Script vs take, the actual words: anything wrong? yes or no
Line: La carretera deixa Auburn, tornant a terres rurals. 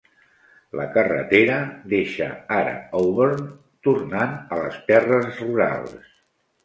yes